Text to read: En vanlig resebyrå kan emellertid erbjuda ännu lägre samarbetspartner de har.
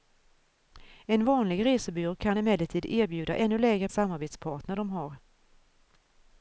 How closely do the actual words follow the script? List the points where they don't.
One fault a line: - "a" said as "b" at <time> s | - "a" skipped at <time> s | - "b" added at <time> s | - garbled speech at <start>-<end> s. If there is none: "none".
none